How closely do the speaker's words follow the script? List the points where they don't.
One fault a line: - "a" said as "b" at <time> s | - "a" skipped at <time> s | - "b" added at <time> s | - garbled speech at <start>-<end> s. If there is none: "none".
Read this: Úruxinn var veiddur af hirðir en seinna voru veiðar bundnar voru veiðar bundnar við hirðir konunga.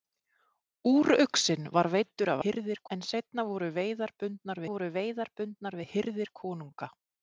none